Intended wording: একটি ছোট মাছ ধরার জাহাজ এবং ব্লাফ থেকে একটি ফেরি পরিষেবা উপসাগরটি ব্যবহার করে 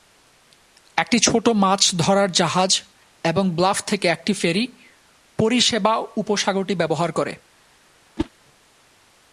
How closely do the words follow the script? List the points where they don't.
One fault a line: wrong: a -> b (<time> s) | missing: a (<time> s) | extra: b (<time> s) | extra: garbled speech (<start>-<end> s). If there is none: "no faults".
no faults